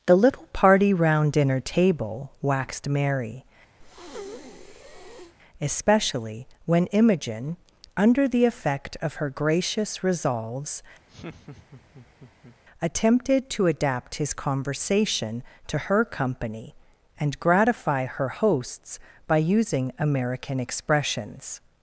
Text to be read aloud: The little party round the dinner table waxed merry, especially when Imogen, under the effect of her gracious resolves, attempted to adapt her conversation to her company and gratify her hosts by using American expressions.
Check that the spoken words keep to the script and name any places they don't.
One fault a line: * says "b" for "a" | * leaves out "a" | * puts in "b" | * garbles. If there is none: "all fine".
* leaves out "the"
* says "his" for "her"